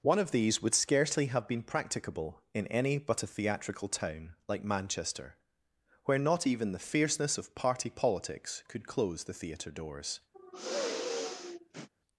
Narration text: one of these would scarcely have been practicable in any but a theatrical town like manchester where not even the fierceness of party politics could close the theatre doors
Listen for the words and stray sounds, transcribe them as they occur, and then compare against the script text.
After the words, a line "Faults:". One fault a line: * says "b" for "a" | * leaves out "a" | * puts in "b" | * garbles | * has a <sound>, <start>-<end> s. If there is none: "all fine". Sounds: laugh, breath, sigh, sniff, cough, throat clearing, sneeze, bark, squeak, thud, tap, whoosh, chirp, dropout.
one of these would scarcely have been practicable in any but a theatrical town like manchester where not even the fierceness of party politics could close the theatre doors
Faults:
* has a sigh, 10.3-11.9 s